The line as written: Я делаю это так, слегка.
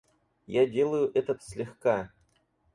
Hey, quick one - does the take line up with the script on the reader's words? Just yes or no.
no